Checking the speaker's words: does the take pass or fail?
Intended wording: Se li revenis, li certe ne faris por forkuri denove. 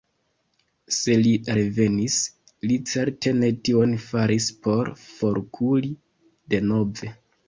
fail